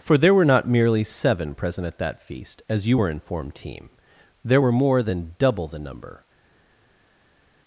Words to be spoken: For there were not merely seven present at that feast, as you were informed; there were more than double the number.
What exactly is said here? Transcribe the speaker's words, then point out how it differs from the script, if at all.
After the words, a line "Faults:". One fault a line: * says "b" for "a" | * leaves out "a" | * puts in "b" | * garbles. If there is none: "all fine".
For there were not merely seven present at that feast, as you were informed; team there were more than double the number.
Faults:
* puts in "team"